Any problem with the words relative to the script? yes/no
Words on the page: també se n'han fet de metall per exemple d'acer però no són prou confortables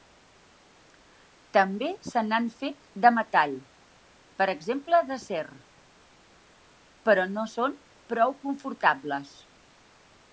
no